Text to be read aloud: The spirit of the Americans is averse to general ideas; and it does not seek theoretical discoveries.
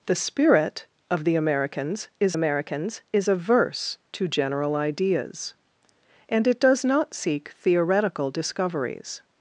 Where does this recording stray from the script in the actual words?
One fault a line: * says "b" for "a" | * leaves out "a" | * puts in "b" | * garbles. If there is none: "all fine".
* puts in "Americans is"